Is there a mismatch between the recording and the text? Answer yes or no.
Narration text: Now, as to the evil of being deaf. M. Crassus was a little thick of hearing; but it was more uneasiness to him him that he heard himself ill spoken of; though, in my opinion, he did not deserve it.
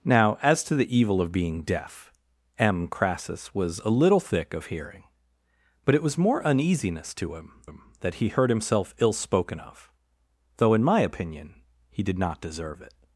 no